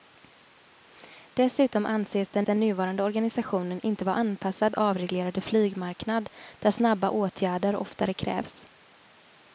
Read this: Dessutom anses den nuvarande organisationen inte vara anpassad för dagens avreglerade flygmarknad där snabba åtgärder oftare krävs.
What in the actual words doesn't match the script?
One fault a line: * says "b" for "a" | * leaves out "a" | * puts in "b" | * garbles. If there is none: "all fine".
* puts in "den"
* leaves out "för dagens"